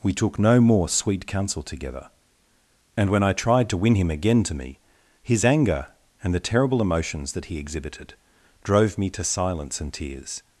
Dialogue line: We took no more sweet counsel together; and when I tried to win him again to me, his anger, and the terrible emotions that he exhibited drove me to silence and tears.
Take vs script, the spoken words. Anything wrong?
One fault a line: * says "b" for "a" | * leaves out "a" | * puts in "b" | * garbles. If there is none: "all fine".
all fine